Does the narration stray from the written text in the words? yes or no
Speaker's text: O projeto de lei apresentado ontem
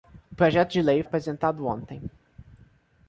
no